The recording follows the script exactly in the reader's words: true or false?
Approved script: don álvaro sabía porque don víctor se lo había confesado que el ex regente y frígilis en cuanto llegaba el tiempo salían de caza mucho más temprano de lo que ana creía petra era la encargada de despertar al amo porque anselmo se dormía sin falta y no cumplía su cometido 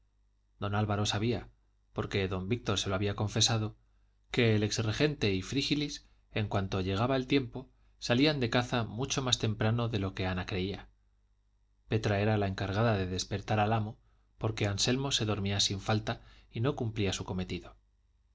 true